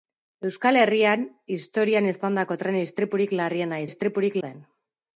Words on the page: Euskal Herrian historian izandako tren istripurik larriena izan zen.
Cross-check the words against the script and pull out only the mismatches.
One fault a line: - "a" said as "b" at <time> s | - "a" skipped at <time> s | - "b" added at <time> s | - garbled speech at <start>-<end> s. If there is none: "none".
- "izan" said as "istripurik" at 3.8 s